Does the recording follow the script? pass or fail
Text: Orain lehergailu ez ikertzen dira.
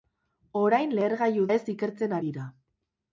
pass